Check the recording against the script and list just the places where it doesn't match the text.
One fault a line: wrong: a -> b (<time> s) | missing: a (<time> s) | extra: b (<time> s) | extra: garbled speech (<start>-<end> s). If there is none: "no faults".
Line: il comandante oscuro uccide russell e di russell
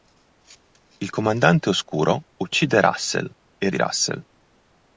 no faults